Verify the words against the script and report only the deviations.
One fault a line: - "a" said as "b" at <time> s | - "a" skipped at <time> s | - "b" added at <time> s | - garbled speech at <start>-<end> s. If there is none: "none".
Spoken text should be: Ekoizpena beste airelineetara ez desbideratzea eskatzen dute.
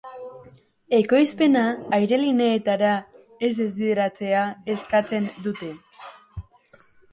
- "beste" skipped at 1.6 s